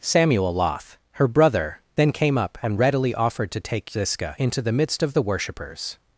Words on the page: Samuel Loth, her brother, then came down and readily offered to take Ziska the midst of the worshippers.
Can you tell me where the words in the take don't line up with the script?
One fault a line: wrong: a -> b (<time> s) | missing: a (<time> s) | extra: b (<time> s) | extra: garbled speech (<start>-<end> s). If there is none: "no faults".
wrong: down -> up (2.4 s)
extra: into (4.4 s)